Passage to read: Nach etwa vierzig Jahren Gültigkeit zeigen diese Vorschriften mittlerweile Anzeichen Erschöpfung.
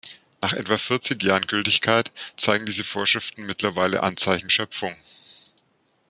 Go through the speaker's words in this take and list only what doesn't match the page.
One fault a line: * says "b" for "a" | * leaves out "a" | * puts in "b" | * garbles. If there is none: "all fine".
all fine